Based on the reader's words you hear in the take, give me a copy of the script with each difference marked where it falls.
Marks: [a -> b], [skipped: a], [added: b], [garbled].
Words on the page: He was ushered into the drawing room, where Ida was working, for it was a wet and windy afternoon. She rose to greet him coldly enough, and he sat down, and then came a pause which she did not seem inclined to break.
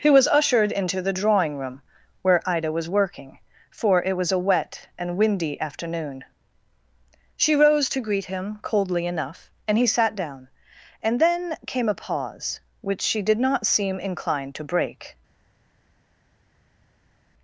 He was ushered into the drawing room, where Ida was working, for it was a wet and windy afternoon. She rose to greet him coldly enough, and he sat down, and then came a pause which she did not seem inclined to break.